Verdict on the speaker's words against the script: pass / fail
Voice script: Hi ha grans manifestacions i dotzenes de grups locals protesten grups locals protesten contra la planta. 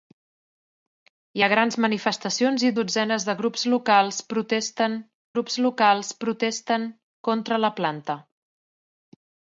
pass